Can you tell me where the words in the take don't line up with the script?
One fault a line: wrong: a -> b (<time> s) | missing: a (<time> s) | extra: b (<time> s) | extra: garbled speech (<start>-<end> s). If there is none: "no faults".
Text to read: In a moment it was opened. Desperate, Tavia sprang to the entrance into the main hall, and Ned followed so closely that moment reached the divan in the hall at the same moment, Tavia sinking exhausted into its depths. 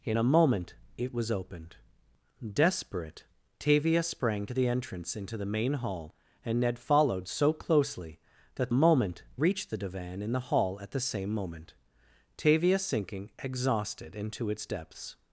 no faults